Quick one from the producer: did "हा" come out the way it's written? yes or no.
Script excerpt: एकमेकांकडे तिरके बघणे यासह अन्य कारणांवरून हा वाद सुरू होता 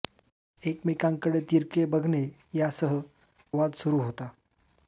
no